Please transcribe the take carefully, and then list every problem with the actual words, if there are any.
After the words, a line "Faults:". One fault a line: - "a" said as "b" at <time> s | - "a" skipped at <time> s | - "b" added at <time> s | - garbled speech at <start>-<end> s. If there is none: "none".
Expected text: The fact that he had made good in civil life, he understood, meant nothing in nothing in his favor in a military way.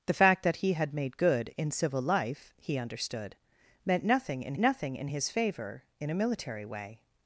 The fact that he had made good in civil life, he understood, meant nothing in nothing in his favor in a military way.
Faults:
none